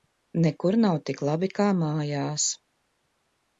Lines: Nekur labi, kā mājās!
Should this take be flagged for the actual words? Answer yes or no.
yes